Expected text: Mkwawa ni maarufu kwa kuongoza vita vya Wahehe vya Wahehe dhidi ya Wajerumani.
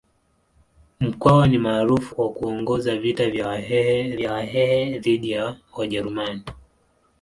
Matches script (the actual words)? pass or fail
pass